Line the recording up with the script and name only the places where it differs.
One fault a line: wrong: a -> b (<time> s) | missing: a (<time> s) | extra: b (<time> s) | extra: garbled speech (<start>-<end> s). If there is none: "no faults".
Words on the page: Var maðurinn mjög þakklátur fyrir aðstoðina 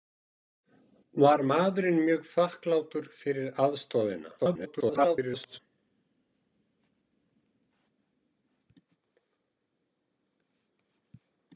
extra: garbled speech (4.4-5.6 s)